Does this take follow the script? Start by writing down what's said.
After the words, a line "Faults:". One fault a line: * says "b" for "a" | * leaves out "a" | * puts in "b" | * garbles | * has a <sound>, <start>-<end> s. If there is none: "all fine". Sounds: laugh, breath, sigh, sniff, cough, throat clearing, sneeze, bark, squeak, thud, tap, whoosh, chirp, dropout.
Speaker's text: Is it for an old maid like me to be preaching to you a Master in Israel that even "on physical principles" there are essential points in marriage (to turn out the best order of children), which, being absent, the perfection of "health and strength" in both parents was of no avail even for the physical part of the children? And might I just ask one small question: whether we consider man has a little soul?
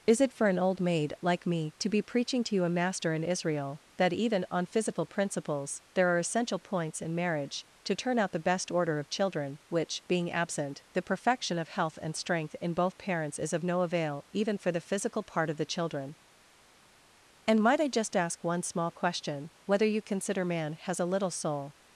Is it for an old maid like me to be preaching to you a Master in Israel that even "on physical principles" there are essential points in marriage (to turn out the best order of children), which, being absent, the perfection of "health and strength" in both parents is of no avail even for the physical part of the children? And might I just ask one small question: whether you consider man has a little soul?
Faults:
* says "is" for "was"
* says "you" for "we"